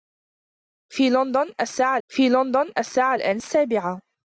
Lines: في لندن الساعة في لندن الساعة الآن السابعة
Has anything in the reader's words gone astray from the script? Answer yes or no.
no